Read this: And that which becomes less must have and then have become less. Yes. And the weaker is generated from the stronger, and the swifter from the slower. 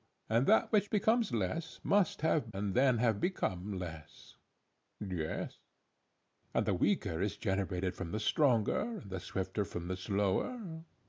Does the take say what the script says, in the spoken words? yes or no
yes